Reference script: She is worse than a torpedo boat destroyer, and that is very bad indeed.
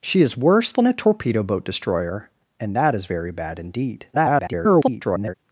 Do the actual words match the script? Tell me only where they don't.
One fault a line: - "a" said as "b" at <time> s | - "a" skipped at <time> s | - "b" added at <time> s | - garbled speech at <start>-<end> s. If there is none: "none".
- garbled speech at 4.1-5.3 s